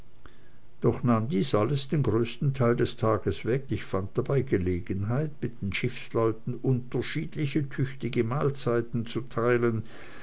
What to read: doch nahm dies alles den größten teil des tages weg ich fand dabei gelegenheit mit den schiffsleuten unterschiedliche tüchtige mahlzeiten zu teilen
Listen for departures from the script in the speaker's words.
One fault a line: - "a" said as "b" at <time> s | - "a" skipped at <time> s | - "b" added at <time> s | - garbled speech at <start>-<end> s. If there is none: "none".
none